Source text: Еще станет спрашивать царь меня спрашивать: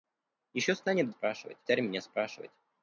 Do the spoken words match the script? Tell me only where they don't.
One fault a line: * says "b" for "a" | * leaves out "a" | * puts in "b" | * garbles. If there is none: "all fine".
all fine